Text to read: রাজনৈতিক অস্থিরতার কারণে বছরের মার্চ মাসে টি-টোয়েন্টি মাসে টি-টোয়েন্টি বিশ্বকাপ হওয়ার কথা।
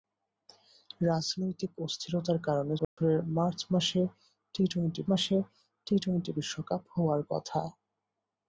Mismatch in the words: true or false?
false